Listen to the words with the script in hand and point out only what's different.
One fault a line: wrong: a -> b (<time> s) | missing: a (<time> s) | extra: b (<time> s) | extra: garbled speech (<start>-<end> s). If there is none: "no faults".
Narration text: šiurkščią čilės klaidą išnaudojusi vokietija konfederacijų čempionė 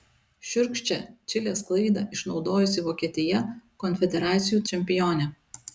no faults